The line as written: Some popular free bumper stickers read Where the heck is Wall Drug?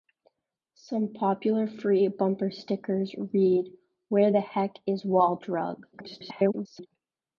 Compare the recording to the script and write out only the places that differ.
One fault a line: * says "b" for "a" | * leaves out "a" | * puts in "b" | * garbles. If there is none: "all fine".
* garbles